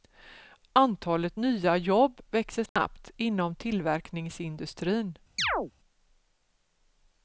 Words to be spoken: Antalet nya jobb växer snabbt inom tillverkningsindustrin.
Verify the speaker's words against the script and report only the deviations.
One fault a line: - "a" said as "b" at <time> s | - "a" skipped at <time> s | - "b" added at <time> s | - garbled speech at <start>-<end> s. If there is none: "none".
none